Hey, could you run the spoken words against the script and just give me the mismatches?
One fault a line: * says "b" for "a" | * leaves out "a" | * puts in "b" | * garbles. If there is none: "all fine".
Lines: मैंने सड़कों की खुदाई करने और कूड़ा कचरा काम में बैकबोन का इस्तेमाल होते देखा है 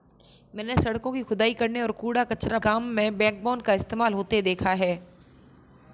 all fine